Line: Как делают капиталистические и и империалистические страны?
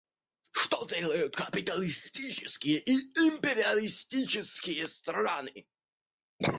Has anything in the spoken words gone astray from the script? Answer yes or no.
yes